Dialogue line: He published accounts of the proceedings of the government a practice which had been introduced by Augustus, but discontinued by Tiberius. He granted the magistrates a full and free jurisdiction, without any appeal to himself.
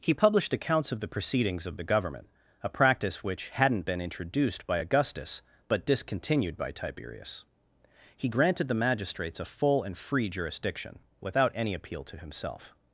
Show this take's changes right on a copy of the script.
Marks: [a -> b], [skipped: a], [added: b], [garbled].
He published accounts of the proceedings of the government a practice which [had -> hadn't] been introduced by Augustus, but discontinued by Tiberius. He granted the magistrates a full and free jurisdiction, without any appeal to himself.